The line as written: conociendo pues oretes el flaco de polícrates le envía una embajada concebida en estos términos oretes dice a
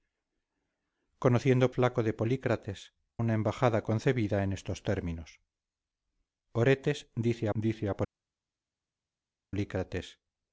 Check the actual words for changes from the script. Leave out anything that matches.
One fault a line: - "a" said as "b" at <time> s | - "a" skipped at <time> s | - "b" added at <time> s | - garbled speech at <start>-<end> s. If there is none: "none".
- "pues oretes el" skipped at 1.7 s
- "le envía" skipped at 2.9 s
- "dice" added at 7.5 s